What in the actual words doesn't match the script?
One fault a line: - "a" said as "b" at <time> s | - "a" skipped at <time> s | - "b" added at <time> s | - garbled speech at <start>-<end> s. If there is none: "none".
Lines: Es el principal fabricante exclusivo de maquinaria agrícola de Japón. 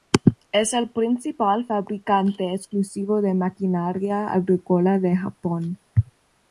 none